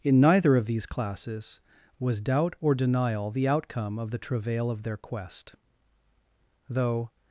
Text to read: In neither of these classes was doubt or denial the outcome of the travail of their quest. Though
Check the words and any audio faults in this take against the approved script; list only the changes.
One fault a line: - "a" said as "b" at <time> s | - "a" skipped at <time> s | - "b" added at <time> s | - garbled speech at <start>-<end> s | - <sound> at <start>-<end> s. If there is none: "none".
none